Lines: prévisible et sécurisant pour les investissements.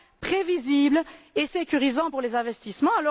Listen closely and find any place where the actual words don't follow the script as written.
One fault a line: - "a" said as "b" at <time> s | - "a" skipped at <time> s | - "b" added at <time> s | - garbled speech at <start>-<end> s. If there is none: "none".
none